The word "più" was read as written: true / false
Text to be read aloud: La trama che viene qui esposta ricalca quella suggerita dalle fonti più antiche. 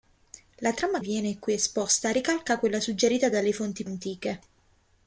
false